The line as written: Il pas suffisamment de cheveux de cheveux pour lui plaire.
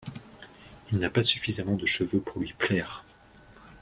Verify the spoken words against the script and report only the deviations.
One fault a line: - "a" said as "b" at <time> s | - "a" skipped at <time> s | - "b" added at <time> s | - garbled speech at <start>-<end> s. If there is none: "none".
- "n'a" added at 1.0 s
- "de cheveux" skipped at 2.2 s